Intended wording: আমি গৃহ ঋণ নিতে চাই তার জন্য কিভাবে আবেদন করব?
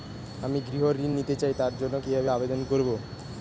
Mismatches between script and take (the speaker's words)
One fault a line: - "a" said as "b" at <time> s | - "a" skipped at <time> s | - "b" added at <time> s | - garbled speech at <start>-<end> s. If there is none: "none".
none